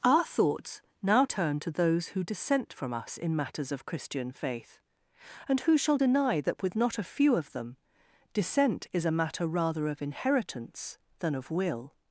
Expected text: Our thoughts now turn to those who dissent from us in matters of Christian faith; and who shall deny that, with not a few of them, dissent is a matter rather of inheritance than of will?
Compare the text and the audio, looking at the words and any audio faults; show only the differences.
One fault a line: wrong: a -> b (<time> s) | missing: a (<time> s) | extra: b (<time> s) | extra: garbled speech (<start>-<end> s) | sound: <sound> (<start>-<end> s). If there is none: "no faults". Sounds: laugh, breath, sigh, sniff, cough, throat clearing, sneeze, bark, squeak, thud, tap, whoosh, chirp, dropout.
no faults